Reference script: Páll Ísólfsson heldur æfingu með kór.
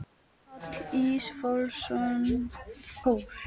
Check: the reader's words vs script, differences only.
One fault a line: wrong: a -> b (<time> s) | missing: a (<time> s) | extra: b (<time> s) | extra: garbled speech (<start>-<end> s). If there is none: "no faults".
missing: heldur æfingu með (2.2 s)